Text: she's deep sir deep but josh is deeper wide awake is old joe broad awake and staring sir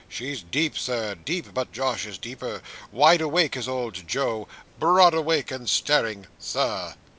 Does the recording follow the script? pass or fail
pass